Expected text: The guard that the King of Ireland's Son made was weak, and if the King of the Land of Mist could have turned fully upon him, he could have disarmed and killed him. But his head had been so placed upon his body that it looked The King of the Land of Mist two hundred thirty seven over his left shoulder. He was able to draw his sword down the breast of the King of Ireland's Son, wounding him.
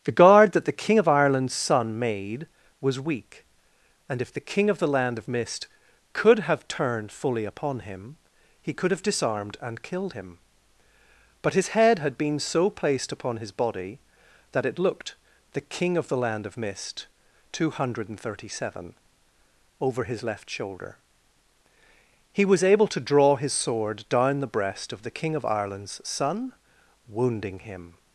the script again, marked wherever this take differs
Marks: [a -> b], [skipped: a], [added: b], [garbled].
The guard that the King of Ireland's Son made was weak, and if the King of the Land of Mist could have turned fully upon him, he could have disarmed and killed him. But his head had been so placed upon his body that it looked The King of the Land of Mist two hundred thirty seven over his left shoulder. He was able to draw his sword down the breast of the King of Ireland's Son, wounding him.